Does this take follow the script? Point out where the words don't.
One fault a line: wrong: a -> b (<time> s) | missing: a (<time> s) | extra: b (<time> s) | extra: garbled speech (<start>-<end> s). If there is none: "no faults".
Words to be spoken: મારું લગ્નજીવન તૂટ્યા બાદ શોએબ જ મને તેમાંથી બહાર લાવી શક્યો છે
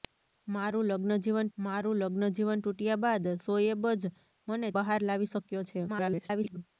extra: મારું લગ્નજીવન (1.6 s)
missing: તેમાંથી (4.7 s)
extra: garbled speech (5.9-6.6 s)